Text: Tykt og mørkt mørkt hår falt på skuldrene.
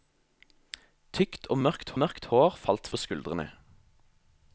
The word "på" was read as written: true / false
true